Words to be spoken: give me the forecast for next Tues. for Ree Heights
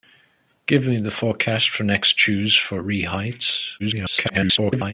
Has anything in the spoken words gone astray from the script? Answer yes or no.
yes